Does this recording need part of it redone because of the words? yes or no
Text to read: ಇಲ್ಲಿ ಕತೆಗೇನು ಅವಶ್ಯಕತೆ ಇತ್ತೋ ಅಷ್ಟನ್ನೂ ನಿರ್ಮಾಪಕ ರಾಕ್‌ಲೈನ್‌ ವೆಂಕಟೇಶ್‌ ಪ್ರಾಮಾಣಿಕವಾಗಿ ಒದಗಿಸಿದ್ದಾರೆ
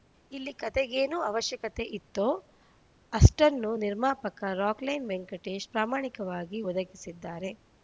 no